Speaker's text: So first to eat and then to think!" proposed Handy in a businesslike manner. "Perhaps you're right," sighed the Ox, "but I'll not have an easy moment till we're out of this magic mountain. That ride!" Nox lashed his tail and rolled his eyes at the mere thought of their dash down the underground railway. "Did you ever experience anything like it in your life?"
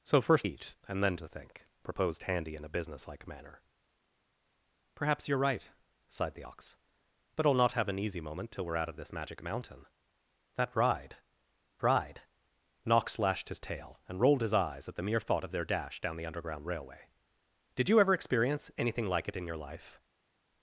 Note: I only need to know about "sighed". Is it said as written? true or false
true